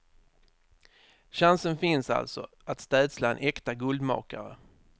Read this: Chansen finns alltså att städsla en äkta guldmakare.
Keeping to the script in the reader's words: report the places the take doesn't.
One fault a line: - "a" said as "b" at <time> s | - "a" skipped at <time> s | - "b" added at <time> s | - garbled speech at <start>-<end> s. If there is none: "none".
none